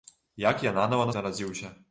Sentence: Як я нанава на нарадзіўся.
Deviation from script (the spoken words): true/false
false